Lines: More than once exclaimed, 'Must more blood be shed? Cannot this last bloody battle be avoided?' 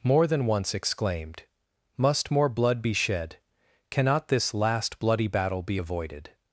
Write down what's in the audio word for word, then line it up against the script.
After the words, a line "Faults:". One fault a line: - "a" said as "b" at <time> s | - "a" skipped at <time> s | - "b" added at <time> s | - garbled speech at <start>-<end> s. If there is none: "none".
More than once exclaimed, 'Must more blood be shed? Cannot this last bloody battle be avoided?'
Faults:
none